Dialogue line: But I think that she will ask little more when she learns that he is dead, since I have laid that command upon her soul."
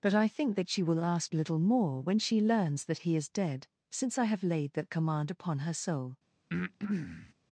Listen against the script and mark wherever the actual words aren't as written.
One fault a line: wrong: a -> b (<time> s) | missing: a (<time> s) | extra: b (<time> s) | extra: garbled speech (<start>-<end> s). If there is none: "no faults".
no faults